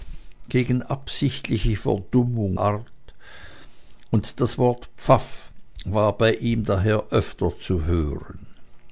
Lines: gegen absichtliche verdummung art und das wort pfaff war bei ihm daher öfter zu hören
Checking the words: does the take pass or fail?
pass